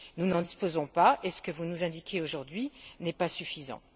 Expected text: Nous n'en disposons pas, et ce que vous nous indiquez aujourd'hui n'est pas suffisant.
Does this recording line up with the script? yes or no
yes